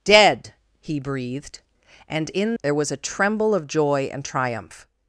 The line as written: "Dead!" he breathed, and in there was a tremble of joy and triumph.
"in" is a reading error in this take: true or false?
false